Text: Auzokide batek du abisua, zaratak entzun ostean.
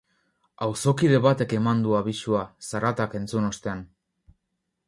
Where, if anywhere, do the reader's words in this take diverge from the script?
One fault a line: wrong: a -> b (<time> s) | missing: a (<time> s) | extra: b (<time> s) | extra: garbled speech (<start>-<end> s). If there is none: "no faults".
extra: eman (1.6 s)